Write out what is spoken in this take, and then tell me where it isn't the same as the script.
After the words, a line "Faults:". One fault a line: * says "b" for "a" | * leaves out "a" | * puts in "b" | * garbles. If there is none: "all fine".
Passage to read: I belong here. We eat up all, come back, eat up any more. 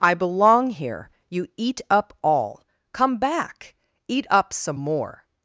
I belong here. You eat up all, come back, eat up some more.
Faults:
* says "You" for "We"
* says "some" for "any"